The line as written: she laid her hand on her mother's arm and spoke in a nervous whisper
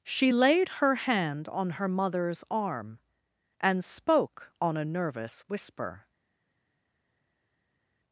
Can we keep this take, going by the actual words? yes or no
no